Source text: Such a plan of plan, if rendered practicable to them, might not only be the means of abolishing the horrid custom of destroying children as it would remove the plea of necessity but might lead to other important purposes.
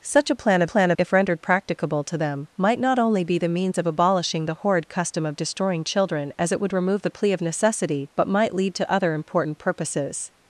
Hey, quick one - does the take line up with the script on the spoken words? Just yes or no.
yes